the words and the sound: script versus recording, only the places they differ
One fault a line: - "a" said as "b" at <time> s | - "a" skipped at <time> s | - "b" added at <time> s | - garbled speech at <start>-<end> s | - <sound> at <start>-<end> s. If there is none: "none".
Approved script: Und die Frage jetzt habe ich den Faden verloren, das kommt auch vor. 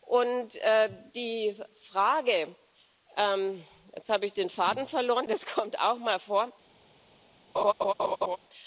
- "mal" added at 6.0 s
- laugh at 7.5-8.4 s